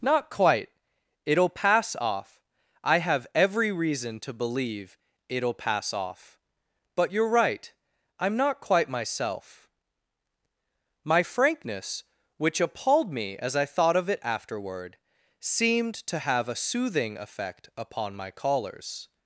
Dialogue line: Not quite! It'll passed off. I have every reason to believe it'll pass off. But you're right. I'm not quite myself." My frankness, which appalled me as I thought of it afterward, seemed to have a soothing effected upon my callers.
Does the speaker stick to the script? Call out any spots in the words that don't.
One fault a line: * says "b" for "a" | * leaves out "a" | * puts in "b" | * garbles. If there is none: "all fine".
* says "pass" for "passed"
* says "effect" for "effected"